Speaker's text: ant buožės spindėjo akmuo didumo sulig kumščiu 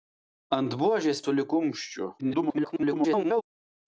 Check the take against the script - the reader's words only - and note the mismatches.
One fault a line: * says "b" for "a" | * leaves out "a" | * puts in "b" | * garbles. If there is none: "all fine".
* leaves out "spindėjo akmuo didumo"
* garbles